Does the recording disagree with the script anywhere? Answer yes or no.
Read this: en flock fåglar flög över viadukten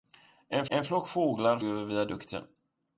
yes